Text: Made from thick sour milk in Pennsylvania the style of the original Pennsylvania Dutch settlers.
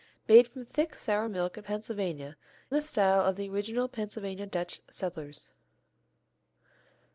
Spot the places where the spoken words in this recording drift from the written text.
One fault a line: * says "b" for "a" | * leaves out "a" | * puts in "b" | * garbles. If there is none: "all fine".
all fine